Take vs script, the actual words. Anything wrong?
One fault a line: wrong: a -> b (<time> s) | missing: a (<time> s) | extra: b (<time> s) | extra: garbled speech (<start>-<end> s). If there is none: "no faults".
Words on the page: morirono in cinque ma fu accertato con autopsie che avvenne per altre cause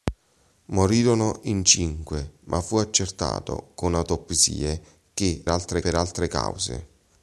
wrong: avvenne -> altre (5.5 s)